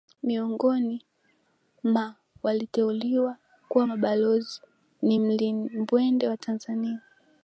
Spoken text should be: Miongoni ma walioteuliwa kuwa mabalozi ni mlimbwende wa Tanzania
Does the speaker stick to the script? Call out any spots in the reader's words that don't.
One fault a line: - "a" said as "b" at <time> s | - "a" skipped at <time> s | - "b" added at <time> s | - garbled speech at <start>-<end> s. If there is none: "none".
none